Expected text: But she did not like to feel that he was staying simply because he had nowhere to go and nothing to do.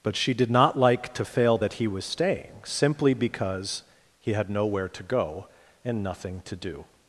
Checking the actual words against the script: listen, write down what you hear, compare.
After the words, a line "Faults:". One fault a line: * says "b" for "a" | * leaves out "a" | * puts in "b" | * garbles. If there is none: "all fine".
But she did not like to fail that he was staying simply because he had nowhere to go and nothing to do.
Faults:
* says "fail" for "feel"